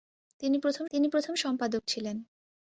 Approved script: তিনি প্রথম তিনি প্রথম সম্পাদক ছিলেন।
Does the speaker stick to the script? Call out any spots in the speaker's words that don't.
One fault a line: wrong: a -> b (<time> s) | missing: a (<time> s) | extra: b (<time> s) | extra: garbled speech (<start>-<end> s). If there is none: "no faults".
no faults